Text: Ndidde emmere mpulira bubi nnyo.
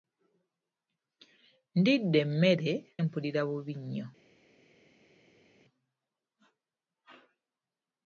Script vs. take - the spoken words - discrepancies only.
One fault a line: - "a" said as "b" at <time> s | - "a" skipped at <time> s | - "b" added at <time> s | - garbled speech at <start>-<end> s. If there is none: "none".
none